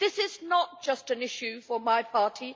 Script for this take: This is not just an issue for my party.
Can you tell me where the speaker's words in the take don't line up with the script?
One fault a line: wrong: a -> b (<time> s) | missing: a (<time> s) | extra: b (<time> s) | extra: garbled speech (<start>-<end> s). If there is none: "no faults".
no faults